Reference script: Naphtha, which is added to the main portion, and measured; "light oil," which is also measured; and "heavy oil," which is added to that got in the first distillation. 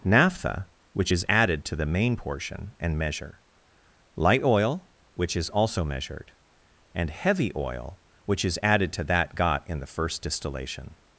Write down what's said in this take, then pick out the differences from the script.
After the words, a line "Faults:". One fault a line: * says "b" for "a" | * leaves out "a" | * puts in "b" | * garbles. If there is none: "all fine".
Naphtha, which is added to the main portion, and measure; "light oil," which is also measured; and "heavy oil," which is added to that got in the first distillation.
Faults:
* says "measure" for "measured"